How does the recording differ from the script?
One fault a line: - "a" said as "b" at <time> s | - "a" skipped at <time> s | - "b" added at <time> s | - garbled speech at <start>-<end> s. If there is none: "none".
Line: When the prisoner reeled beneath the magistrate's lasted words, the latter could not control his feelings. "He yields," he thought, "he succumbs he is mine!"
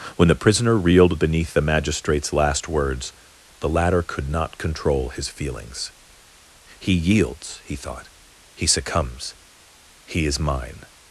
- "lasted" said as "last" at 2.3 s